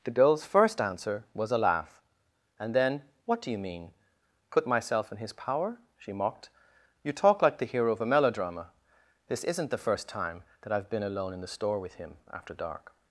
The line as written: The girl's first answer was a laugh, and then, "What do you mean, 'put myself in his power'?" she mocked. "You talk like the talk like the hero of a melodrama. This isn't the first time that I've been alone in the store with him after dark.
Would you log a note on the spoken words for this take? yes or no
yes